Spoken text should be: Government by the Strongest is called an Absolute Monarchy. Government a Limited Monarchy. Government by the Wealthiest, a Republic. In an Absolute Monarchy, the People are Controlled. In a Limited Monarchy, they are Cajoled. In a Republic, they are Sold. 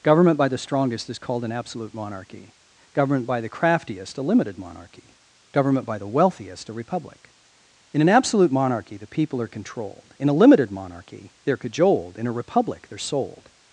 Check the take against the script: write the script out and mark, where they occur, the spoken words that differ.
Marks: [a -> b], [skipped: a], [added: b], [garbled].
Government by the Strongest is called an Absolute Monarchy. Government [added: by the Craftiest] a Limited Monarchy. Government by the Wealthiest, a Republic. In an Absolute Monarchy, the People are Controlled. In a Limited Monarchy, they are Cajoled. In a Republic, they are Sold.